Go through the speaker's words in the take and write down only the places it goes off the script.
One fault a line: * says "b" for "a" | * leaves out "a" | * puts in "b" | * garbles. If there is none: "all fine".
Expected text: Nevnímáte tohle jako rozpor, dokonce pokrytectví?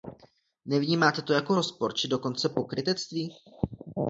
* says "to" for "tohle"
* puts in "či"